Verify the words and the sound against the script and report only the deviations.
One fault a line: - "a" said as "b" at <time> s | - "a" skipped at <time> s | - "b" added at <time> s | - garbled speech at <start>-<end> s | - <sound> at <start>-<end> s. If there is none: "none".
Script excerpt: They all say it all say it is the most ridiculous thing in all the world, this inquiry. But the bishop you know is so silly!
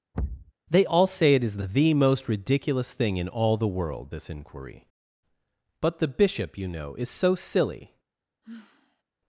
- thud at 0.1-0.5 s
- "all say it" skipped at 1.4 s
- sigh at 8.4-9.0 s